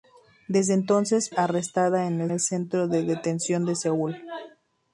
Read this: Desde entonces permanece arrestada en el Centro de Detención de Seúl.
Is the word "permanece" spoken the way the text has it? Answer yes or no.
no